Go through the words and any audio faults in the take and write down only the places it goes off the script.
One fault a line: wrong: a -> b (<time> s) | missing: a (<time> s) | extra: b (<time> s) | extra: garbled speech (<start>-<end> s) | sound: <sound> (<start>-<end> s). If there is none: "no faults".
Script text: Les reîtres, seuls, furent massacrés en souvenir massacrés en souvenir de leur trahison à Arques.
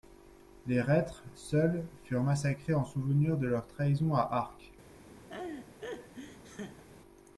missing: massacrés en souvenir (3.4 s)
sound: laugh (5.3-6.8 s)